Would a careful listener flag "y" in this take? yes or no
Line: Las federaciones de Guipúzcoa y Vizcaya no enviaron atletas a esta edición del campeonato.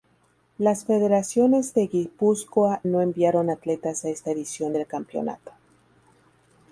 yes